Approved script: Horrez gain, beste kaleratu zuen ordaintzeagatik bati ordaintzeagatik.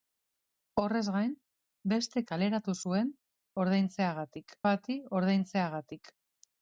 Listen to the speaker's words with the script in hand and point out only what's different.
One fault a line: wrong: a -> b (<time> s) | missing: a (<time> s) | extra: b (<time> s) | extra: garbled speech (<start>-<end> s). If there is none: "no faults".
no faults